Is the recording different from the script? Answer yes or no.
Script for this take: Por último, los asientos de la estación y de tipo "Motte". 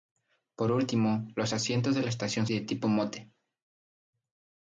no